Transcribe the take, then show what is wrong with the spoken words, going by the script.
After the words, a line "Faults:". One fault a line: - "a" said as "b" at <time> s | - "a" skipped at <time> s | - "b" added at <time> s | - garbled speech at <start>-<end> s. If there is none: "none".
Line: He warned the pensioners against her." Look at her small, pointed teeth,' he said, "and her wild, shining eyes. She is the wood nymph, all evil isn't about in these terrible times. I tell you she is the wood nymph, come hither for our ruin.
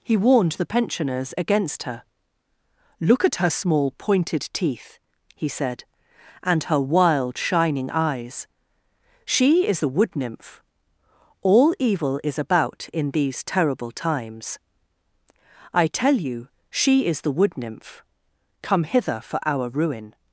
He warned the pensioners against her." Look at her small, pointed teeth,' he said, "and her wild, shining eyes. She is the wood nymph, all evil is about in these terrible times. I tell you she is the wood nymph, come hither for our ruin.
Faults:
- "isn't" said as "is" at 12.2 s